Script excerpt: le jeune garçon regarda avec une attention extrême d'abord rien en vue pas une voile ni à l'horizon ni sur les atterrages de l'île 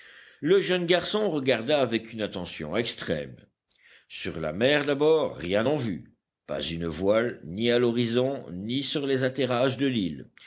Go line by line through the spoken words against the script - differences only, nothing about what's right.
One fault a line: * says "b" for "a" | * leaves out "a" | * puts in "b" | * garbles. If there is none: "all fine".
* puts in "sur la mer"